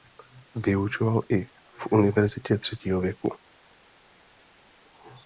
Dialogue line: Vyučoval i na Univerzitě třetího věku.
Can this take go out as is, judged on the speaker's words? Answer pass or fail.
fail